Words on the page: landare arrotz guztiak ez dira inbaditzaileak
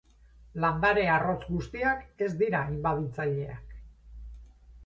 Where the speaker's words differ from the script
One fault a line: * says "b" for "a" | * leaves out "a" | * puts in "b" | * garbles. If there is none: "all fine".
all fine